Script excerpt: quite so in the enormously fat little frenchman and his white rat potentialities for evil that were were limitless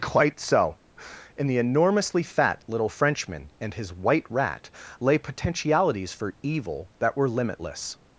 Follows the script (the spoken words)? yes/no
no